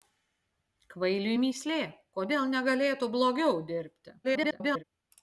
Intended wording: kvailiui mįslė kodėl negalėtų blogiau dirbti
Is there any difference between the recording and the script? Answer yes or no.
yes